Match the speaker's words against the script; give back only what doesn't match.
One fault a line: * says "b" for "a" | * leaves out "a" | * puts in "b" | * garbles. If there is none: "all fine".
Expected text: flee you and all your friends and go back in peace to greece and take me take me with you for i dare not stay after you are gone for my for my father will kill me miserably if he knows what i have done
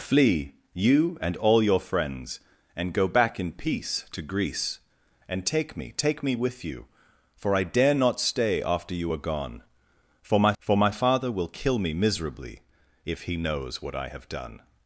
all fine